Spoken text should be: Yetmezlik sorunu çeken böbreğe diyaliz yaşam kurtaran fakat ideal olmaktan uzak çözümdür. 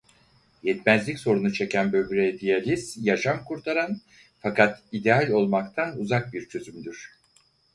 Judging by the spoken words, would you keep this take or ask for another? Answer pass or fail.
fail